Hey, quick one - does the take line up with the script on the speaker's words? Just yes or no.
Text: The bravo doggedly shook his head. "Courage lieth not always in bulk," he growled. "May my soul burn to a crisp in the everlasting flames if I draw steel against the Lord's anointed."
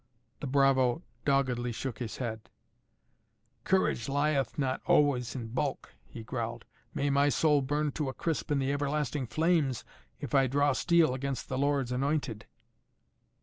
yes